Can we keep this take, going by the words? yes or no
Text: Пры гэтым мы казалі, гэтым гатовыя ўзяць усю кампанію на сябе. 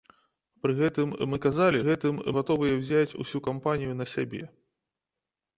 yes